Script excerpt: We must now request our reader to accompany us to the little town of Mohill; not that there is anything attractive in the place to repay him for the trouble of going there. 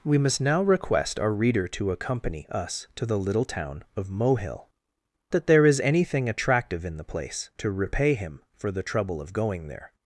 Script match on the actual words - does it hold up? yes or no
no